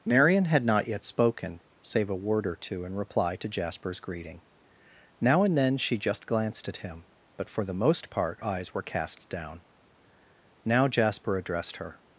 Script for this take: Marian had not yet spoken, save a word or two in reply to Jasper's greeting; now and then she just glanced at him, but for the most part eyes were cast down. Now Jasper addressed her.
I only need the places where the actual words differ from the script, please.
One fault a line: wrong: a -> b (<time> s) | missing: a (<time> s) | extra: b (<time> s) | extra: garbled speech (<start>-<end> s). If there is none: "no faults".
no faults